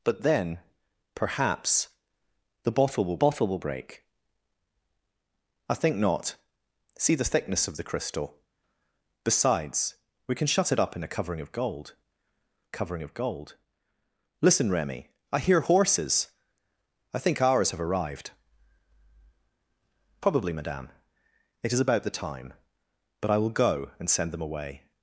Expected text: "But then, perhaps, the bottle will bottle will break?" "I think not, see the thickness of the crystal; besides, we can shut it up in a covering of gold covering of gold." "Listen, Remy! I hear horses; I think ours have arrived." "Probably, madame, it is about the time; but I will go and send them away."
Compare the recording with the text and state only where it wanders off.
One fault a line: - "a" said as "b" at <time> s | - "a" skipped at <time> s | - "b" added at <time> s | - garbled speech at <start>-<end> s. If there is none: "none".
none